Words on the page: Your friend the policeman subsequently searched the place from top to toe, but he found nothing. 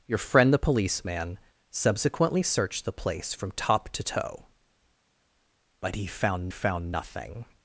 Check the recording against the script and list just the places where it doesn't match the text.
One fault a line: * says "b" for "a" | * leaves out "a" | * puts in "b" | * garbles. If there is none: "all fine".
* puts in "found"